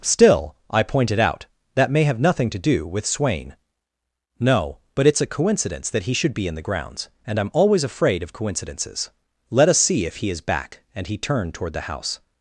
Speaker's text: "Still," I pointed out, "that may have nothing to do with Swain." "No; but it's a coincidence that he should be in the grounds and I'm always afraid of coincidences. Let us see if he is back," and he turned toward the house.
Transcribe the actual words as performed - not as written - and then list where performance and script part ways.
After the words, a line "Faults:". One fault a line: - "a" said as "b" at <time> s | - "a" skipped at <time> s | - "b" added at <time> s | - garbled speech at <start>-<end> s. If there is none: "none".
"Still," I pointed out, "that may have nothing to do with Swain." "No; but it's a coincidence that he should be in the grounds and I'm always afraid of coincidences. Let us see if he is back," and he turned toward the house.
Faults:
none